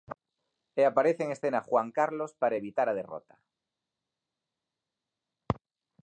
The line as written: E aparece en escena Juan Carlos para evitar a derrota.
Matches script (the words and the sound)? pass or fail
pass